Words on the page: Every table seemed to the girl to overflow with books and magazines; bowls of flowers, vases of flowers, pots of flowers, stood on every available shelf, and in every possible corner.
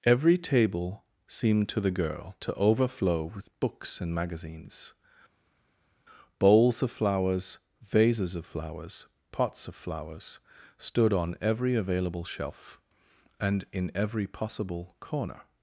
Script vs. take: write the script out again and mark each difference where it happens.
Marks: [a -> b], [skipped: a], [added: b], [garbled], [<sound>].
Every table seemed to the girl to overflow with books and magazines; bowls of flowers, vases of flowers, pots of flowers, stood on every available shelf, and in every possible corner.